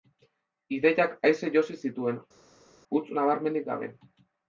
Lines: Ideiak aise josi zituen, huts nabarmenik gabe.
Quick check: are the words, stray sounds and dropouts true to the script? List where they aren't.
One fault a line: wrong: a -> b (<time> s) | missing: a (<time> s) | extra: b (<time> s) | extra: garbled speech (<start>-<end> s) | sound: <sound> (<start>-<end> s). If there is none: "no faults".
no faults